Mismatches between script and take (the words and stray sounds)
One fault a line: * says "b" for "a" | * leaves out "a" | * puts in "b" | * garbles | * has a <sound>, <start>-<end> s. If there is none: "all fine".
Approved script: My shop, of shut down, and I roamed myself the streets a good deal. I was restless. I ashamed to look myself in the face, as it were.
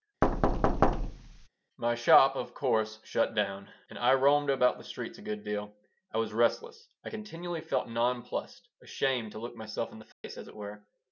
* has a thud, 0.2-1.5 s
* puts in "course"
* says "about" for "myself"
* puts in "continually felt nonplussed"
* has a dropout, 10.1-10.2 s